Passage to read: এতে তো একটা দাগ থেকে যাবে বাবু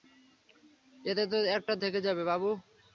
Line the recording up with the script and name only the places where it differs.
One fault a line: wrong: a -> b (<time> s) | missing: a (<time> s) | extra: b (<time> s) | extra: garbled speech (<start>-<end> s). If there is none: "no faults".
missing: দাগ (1.7 s)